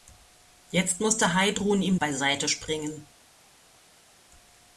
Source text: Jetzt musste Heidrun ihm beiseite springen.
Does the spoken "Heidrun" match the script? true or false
true